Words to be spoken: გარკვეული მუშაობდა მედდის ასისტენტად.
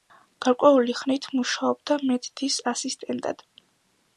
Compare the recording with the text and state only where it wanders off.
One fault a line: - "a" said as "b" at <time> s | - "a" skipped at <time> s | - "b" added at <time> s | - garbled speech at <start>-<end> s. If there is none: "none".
- "ხნით" added at 1.0 s